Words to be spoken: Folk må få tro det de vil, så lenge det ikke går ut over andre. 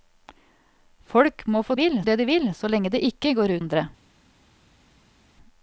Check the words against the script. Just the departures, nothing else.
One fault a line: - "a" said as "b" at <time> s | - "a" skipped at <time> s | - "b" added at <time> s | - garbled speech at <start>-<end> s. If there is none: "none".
- "tro" said as "vil" at 1.7 s
- "ut over" skipped at 3.6 s